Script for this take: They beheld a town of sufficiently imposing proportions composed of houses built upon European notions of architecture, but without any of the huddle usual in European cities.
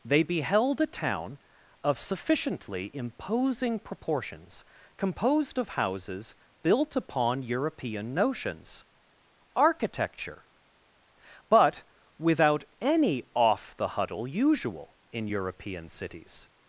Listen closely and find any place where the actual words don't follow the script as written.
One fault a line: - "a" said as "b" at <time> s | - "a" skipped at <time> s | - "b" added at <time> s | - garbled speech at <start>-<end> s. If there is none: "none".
- "of" skipped at 8.8 s
- "of" said as "off" at 13.3 s